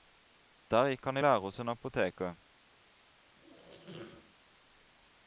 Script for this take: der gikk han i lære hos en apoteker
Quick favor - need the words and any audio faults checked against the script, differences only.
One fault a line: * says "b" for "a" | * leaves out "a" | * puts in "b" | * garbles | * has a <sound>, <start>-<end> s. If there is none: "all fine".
* has a squeak, 3.4-4.4 s